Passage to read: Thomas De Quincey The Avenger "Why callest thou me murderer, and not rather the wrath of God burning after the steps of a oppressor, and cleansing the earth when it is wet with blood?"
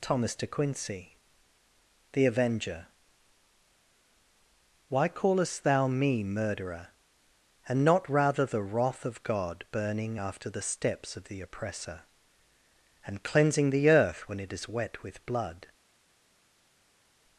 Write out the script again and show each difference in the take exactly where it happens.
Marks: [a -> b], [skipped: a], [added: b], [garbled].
Thomas De Quincey The Avenger "Why callest thou me murderer, and not rather the wrath of God burning after the steps of [a -> the] oppressor, and cleansing the earth when it is wet with blood?"